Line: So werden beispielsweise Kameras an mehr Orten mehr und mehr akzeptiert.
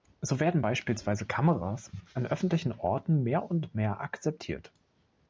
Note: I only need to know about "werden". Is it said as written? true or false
true